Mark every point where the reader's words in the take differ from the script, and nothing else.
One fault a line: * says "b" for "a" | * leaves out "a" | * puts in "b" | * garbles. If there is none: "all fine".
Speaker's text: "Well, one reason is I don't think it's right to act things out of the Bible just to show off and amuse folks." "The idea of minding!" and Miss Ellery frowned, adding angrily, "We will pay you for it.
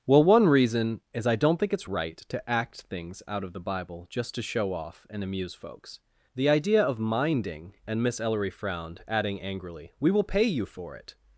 all fine